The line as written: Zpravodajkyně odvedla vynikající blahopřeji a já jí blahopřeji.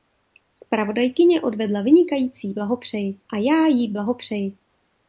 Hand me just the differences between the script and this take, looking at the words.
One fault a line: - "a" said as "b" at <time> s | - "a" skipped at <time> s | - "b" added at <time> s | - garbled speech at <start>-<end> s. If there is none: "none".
none